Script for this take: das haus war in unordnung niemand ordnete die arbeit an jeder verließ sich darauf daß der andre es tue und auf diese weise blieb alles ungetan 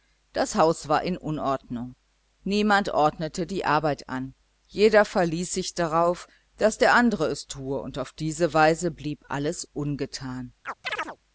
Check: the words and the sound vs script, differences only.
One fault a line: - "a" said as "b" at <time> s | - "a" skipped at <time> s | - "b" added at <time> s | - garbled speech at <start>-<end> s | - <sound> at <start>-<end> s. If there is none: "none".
- chirp at 10.7-11.2 s